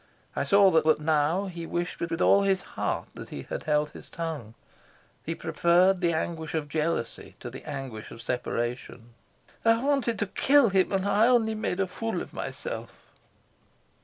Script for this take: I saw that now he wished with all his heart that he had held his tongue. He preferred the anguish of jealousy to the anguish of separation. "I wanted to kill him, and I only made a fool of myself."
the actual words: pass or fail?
fail